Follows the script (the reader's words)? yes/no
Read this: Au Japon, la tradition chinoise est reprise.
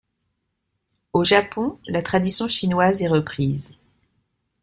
yes